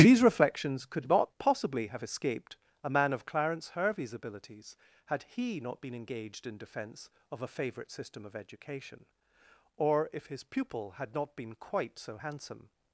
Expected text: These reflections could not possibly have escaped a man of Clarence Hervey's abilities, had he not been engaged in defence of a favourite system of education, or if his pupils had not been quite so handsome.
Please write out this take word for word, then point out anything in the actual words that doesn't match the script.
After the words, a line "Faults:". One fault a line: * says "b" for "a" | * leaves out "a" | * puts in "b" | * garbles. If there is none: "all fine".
These reflections could not possibly have escaped a man of Clarence Hervey's abilities, had he not been engaged in defence of a favourite system of education, or if his pupil had not been quite so handsome.
Faults:
* says "pupil" for "pupils"